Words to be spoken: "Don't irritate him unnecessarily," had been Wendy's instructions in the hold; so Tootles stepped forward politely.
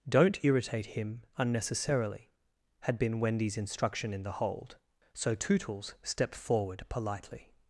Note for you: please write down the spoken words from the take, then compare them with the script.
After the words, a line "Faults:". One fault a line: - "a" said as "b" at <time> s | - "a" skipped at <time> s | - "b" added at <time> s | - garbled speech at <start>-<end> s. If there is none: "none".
"Don't irritate him unnecessarily," had been Wendy's instruction in the hold; so Tootles stepped forward politely.
Faults:
- "instructions" said as "instruction" at 3.6 s